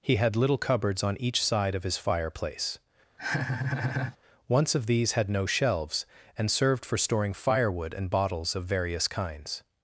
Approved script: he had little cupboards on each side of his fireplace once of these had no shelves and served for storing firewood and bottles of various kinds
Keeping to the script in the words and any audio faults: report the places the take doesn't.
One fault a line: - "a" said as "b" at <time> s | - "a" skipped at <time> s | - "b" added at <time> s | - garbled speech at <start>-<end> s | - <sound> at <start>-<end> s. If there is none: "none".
- laugh at 3.2-4.2 s